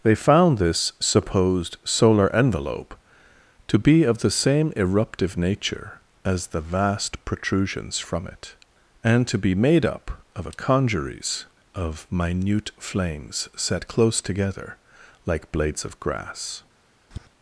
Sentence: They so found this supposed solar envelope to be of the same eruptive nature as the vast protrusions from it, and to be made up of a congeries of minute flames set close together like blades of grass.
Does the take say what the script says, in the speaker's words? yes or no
no